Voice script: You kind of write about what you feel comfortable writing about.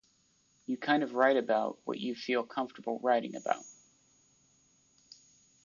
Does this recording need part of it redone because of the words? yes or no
no